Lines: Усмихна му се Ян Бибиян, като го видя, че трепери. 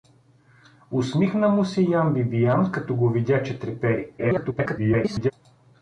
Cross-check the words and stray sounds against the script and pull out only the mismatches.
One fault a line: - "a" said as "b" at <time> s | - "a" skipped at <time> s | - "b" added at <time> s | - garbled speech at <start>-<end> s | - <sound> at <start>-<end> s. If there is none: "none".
- garbled speech at 4.2-5.3 s